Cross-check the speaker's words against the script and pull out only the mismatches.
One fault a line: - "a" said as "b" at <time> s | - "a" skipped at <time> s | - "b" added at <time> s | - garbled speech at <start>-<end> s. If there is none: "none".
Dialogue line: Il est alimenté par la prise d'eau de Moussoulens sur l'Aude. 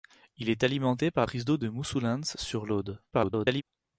- "la" skipped at 1.3 s
- garbled speech at 3.1-3.6 s